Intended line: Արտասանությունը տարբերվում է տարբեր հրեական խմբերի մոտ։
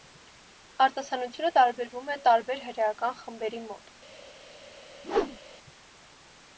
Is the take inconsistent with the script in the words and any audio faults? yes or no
yes